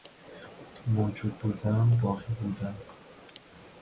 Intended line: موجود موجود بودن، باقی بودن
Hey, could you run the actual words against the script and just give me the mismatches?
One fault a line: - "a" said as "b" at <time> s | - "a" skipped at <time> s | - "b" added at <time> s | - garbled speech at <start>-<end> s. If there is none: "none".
- "موجود" skipped at 1.4 s